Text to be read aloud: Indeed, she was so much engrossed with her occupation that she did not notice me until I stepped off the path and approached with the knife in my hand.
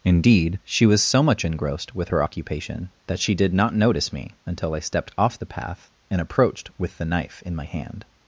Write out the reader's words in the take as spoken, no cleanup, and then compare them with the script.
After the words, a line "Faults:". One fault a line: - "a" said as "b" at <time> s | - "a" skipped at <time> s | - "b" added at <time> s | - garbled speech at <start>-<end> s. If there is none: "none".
Indeed, she was so much engrossed with her occupation that she did not notice me until I stepped off the path and approached with the knife in my hand.
Faults:
none